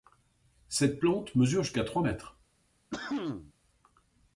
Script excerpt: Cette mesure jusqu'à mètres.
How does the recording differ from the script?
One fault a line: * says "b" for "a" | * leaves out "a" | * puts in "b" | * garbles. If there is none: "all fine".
* puts in "plante"
* puts in "trois"